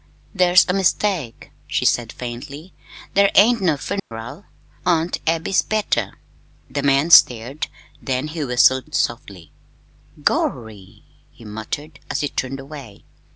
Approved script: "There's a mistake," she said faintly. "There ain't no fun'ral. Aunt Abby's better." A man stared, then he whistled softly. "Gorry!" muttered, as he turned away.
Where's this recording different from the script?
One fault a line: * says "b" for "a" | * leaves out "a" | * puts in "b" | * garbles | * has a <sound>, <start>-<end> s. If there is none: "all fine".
* has a dropout, 4.0-4.1 s
* says "The" for "A"
* puts in "he"